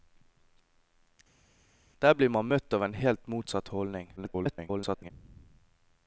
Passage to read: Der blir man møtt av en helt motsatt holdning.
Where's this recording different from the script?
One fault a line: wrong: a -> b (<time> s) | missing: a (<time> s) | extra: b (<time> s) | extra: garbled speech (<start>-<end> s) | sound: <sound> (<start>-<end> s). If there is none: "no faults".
extra: garbled speech (4.2-5.1 s)